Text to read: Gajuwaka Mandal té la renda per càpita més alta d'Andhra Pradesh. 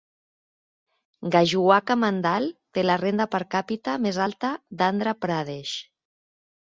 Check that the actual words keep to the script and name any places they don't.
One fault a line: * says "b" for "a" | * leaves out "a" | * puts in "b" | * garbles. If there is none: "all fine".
all fine